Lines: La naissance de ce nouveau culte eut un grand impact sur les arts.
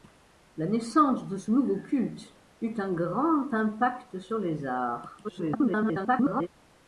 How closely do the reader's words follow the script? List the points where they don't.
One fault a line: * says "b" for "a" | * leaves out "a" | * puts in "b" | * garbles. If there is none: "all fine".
* garbles